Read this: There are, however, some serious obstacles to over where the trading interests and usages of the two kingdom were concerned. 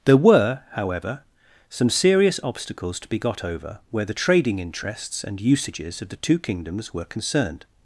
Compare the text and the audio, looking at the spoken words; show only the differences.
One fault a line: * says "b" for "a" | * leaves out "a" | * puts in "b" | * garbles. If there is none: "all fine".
* says "were" for "are"
* puts in "be got"
* says "kingdoms" for "kingdom"